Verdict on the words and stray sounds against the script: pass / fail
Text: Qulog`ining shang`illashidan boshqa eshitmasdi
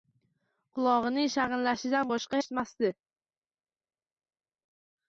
pass